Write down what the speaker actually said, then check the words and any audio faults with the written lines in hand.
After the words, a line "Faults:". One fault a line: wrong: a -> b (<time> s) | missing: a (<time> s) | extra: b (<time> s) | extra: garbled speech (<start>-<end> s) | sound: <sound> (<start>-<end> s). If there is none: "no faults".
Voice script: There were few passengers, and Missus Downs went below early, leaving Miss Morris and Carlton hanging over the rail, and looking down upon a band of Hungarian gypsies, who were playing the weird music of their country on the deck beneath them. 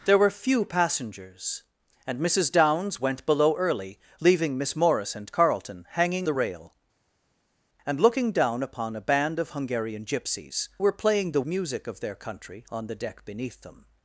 There were few passengers, and Missus Downs went below early, leaving Miss Morris and Carlton hanging the rail, and looking down upon a band of Hungarian gypsies, were playing the music of their country on the deck beneath them.
Faults:
missing: over (6.3 s)
missing: who (10.7 s)
missing: weird (11.4 s)